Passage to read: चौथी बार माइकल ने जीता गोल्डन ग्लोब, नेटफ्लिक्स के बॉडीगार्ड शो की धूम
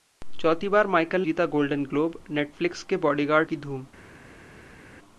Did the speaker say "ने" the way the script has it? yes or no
no